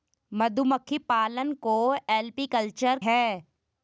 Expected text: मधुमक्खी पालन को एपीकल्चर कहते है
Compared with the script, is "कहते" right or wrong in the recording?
wrong